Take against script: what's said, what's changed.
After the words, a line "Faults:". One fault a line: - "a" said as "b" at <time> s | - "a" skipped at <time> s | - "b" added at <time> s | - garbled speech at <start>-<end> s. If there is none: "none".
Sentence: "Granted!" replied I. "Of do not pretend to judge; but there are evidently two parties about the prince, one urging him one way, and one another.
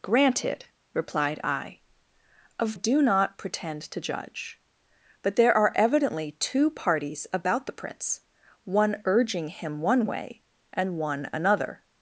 "Granted!" replied I. "Of do not pretend to judge; but there are evidently two parties about the prince, one urging him one way, and one another.
Faults:
none